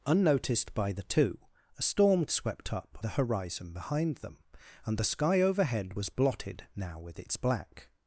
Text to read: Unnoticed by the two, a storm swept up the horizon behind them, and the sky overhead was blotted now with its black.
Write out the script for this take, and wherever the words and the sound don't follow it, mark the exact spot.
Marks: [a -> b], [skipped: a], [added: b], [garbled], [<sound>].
Unnoticed by the two, a storm swept up the horizon behind them, and the sky overhead was blotted now with its black.